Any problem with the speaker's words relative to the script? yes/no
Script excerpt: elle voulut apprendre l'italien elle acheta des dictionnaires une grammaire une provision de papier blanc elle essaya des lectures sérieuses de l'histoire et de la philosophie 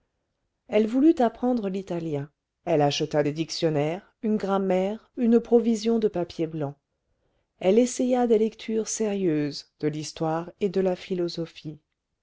no